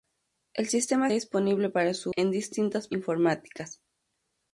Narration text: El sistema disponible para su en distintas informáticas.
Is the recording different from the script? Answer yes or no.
no